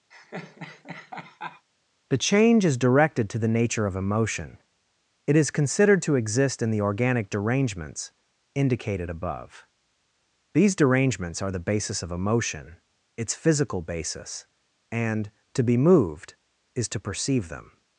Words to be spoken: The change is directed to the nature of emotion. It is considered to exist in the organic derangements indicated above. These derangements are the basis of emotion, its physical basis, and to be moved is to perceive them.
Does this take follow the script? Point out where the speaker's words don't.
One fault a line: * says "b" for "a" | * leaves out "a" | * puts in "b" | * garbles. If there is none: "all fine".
all fine